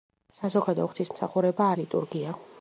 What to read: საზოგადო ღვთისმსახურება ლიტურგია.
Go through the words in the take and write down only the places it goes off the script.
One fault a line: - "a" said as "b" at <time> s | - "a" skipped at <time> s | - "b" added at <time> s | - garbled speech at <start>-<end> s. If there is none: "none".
none